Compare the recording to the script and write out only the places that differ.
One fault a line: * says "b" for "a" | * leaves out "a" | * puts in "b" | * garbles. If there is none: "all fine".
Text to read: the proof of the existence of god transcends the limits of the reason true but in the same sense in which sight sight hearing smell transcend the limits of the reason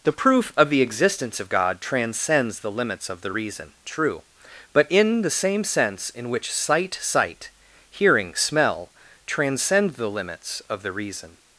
all fine